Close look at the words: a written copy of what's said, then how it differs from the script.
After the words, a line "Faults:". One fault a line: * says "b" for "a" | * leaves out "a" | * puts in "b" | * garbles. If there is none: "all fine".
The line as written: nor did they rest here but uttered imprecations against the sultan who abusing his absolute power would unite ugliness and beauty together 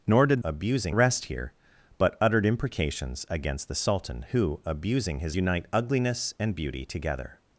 nor did abusing rest here but uttered imprecations against the sultan who abusing his unite ugliness and beauty together
Faults:
* says "abusing" for "they"
* leaves out "absolute power would"